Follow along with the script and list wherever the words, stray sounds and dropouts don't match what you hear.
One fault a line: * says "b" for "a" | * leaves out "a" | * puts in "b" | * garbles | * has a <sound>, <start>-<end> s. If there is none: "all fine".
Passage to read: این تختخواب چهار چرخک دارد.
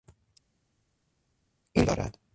* leaves out "تختخواب چهار چرخک"